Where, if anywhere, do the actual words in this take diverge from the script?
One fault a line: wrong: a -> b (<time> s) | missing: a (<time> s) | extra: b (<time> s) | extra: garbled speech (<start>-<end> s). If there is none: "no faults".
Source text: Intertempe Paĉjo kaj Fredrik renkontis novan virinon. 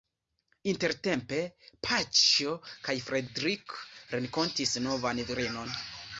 no faults